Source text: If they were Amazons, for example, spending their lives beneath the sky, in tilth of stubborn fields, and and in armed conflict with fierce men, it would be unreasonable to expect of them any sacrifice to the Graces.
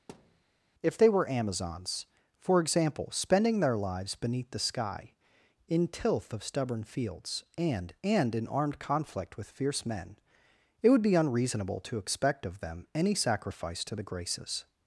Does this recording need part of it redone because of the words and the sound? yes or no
yes